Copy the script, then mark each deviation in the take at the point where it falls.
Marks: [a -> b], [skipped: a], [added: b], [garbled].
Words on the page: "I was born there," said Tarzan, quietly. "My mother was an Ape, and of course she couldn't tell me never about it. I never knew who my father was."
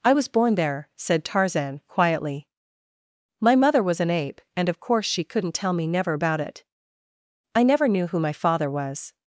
"I was born there," said Tarzan, quietly. "My mother was an Ape, and of course she couldn't tell me never about it. I never knew who my father was."